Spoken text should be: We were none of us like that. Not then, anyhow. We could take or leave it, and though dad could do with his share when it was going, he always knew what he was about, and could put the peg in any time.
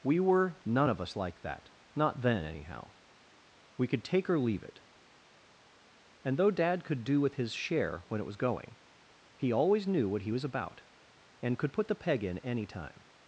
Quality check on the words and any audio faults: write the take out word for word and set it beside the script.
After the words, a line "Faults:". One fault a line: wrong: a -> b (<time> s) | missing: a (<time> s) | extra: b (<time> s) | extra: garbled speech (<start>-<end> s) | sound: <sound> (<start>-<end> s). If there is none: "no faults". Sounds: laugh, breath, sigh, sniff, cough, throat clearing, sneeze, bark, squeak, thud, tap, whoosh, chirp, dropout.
We were none of us like that. Not then, anyhow. We could take or leave it, and though dad could do with his share when it was going, he always knew what he was about, and could put the peg in any time.
Faults:
no faults